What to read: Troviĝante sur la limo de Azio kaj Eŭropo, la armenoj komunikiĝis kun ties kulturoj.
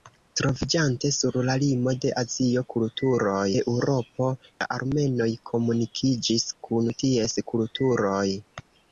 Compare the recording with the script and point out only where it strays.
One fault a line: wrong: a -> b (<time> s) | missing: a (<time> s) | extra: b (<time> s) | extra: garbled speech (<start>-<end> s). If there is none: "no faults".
wrong: kaj -> kulturoj (2.8 s)